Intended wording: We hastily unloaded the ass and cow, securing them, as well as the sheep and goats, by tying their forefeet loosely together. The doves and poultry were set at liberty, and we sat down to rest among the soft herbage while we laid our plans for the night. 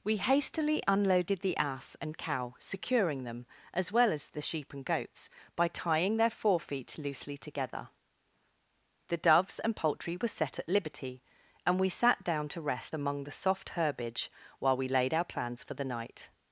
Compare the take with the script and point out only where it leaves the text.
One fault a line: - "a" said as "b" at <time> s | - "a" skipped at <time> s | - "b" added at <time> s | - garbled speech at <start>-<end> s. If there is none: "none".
none